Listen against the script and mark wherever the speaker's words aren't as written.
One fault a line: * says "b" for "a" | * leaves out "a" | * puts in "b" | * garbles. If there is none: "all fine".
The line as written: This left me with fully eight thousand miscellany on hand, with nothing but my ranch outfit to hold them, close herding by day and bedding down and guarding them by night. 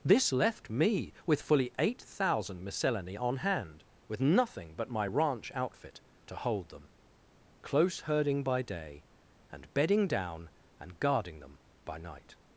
all fine